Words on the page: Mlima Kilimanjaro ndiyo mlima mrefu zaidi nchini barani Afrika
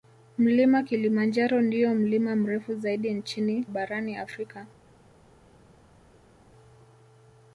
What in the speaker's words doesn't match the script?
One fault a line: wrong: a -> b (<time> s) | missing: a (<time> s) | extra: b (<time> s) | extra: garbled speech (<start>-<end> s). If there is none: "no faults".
no faults